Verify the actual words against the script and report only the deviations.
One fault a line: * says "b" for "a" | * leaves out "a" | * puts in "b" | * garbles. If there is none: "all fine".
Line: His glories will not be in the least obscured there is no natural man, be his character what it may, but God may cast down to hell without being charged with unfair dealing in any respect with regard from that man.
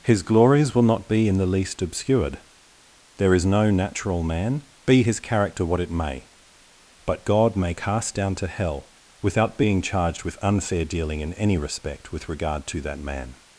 * says "to" for "from"